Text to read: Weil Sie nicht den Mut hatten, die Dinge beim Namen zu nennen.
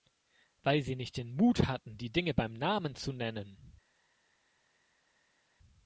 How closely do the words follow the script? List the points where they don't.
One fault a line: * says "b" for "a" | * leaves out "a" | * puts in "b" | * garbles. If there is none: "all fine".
all fine